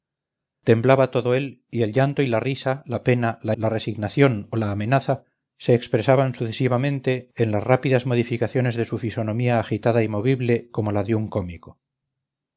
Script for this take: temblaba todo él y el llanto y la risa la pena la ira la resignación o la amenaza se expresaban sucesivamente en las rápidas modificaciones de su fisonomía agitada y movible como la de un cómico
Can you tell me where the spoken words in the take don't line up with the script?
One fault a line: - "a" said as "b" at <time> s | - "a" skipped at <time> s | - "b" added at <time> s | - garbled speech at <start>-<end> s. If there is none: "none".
- "ira" skipped at 3.5 s